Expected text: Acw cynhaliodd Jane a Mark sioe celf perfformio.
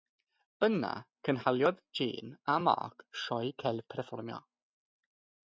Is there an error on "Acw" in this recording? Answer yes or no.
yes